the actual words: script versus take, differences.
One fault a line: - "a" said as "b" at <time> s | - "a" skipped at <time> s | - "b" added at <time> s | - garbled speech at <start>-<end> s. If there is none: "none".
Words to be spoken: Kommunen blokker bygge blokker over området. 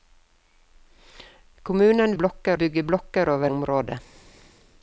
none